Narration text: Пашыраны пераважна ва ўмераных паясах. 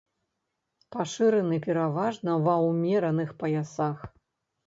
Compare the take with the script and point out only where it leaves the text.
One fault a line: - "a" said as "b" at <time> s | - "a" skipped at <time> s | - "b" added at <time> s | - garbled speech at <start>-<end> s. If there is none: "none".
none